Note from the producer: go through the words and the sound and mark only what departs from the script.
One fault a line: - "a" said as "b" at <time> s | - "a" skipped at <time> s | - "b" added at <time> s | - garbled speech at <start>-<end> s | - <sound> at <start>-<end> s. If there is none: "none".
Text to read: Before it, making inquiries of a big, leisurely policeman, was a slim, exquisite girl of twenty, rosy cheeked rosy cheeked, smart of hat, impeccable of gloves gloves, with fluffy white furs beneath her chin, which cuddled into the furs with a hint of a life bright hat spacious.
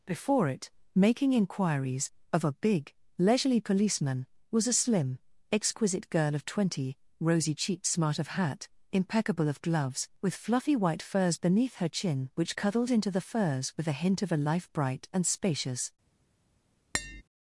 - "rosy cheeked" skipped at 7.8 s
- "gloves" skipped at 10.1 s
- "hat" said as "and" at 15.1 s
- tap at 16.9-17.2 s